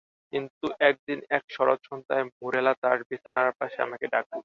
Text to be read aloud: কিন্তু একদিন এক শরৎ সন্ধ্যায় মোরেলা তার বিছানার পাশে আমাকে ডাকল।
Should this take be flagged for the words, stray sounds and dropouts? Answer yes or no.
yes